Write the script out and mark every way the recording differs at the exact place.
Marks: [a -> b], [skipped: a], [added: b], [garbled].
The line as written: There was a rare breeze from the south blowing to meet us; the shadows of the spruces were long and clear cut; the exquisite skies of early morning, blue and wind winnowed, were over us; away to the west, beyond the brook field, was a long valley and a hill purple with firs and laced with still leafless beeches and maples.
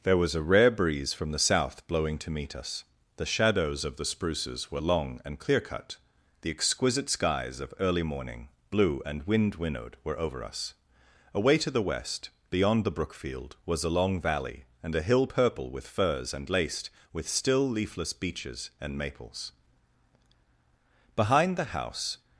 There was a rare breeze from the south blowing to meet us; the shadows of the spruces were long and clear cut; the exquisite skies of early morning, blue and wind winnowed, were over us; away to the west, beyond the brook field, was a long valley and a hill purple with firs and laced with still leafless beeches and maples. [added: Behind the house]